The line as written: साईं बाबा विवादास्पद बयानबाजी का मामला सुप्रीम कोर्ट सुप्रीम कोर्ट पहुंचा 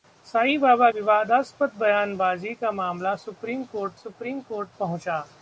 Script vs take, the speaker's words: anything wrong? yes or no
no